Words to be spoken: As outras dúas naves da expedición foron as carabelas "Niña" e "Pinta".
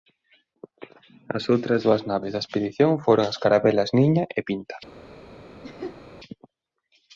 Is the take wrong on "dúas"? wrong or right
right